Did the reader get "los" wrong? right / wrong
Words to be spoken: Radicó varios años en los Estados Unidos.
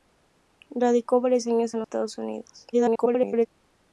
wrong